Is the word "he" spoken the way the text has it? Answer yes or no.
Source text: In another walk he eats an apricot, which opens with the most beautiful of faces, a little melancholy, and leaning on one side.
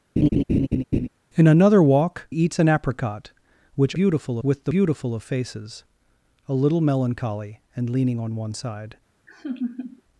no